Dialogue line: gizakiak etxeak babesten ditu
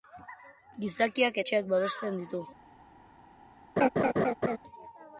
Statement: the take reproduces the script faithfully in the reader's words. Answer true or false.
true